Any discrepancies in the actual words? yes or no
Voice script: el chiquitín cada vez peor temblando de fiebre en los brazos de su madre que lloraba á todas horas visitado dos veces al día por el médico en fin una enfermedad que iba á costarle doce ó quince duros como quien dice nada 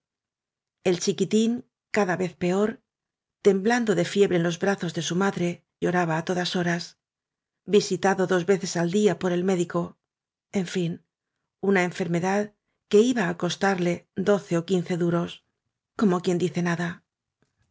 yes